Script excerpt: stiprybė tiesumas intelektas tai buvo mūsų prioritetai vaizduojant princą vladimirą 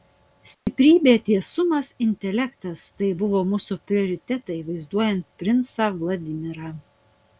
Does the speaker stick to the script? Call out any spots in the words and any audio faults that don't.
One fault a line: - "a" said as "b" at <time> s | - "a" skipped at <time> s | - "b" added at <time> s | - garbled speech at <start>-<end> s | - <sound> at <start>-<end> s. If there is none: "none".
- dropout at 0.5-0.7 s